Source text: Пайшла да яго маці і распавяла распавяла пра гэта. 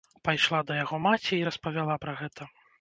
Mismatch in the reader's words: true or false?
true